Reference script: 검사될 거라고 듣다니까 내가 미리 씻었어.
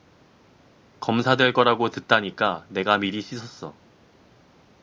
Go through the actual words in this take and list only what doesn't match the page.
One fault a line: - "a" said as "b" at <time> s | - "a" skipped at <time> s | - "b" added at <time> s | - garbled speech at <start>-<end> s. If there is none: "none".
none